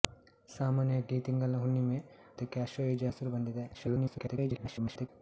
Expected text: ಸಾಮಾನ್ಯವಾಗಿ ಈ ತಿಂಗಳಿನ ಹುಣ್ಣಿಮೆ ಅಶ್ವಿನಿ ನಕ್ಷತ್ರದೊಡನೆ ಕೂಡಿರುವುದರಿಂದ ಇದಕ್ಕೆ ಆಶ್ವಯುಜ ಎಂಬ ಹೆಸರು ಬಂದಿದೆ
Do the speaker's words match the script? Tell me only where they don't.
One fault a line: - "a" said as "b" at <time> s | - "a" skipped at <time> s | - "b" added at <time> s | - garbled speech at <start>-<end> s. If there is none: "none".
- "ಅಶ್ವಿನಿ ನಕ್ಷತ್ರದೊಡನೆ ಕೂಡಿರುವುದರಿಂದ" skipped at 2.0 s
- "ಎಂಬ" skipped at 3.0 s
- garbled speech at 3.7-5.1 s